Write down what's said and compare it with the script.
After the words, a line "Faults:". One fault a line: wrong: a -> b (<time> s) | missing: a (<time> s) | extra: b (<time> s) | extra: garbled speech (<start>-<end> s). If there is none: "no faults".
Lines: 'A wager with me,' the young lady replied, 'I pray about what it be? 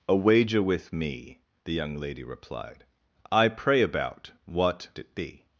'A wager with me,' the young lady replied, 'I pray about what it be?
Faults:
no faults